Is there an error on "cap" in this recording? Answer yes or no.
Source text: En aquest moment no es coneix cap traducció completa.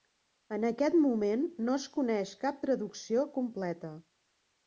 no